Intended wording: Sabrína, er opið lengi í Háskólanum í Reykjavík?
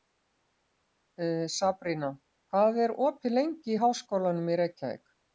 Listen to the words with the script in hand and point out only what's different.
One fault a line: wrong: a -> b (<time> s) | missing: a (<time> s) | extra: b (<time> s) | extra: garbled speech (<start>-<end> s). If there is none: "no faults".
extra: hvað (2.5 s)